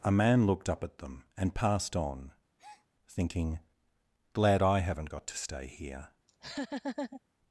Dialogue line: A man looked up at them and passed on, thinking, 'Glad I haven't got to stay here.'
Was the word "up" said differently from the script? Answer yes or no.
no